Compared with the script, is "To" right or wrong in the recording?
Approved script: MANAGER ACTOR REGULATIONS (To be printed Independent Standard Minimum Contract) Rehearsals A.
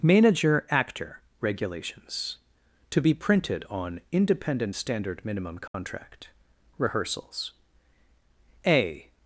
right